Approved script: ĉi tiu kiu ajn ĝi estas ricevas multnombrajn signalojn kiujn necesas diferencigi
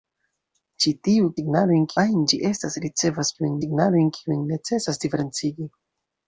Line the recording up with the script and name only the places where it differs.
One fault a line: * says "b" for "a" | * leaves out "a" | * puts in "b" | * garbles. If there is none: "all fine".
* says "signalojn" for "kiu"
* says "kiujn" for "multnombrajn"